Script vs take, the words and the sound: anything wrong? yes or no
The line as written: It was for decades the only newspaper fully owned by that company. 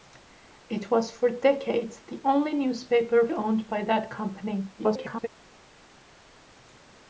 yes